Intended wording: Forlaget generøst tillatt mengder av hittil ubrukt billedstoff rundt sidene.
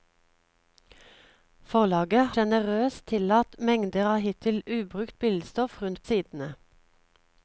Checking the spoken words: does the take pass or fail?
pass